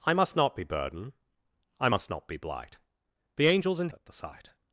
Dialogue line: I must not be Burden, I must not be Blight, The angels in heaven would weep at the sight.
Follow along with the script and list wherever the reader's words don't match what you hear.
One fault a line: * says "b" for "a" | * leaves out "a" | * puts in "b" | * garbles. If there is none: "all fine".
* leaves out "heaven would weep"